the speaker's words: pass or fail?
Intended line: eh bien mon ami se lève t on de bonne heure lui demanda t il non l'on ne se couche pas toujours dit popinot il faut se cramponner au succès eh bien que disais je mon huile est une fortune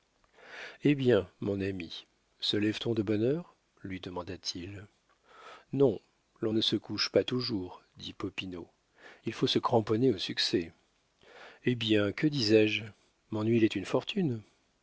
pass